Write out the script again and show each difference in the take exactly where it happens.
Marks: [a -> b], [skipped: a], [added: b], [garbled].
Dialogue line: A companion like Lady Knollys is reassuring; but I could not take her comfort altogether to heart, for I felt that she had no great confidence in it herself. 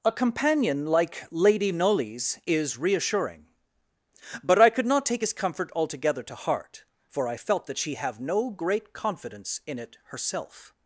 A companion like Lady Knollys is reassuring; but I could not take [her -> his] comfort altogether to heart, for I felt that she [had -> have] no great confidence in it herself.